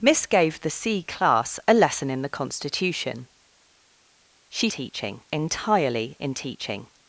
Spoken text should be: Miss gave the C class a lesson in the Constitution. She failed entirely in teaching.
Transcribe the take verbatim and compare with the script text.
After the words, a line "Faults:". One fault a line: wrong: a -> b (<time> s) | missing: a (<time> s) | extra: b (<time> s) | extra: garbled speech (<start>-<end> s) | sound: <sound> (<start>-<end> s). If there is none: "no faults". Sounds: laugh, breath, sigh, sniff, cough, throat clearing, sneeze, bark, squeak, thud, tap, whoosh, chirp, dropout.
Miss gave the C class a lesson in the Constitution. She teaching entirely in teaching.
Faults:
wrong: failed -> teaching (4.7 s)